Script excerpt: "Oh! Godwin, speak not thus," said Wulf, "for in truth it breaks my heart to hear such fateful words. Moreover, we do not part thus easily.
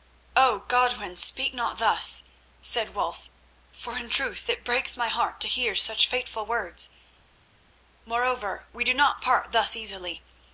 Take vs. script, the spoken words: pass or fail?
pass